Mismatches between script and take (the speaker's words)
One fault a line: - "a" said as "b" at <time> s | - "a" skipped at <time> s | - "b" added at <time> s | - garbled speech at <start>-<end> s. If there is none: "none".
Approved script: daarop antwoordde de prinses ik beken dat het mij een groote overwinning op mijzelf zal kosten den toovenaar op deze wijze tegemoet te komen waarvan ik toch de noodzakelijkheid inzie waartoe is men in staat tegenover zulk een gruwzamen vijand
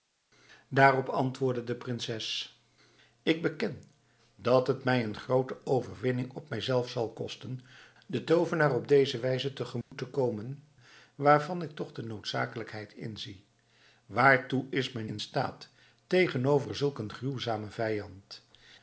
none